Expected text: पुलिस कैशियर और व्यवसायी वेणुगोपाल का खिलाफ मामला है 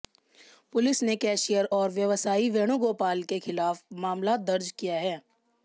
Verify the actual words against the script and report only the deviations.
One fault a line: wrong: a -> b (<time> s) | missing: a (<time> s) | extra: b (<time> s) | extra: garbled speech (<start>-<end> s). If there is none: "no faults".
extra: ने (1.0 s)
wrong: का -> के (3.2 s)
extra: दर्ज किया (4.4 s)